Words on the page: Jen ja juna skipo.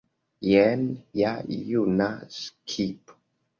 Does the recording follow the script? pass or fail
pass